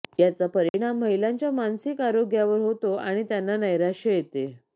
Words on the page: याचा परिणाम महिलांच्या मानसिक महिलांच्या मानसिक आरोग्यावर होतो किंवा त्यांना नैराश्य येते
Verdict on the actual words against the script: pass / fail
fail